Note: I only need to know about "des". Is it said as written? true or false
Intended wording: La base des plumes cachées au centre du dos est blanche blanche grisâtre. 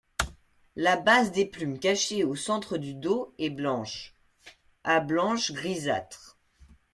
true